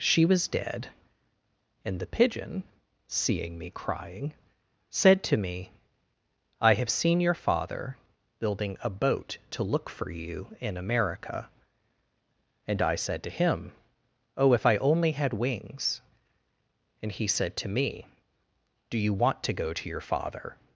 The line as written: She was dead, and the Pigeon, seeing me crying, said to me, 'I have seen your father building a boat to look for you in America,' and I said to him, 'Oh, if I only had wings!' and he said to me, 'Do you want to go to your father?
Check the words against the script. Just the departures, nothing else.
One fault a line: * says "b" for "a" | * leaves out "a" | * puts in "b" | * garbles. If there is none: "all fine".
all fine